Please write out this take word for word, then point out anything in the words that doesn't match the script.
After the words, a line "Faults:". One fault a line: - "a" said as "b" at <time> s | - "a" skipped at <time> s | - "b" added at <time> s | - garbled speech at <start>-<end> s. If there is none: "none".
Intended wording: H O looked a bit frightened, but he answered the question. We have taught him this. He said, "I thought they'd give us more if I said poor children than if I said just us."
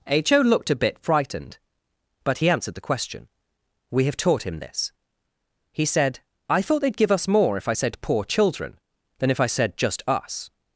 H O looked a bit frightened, but he answered the question. We have taught him this. He said, "I thought they'd give us more if I said poor children than if I said just us."
Faults:
none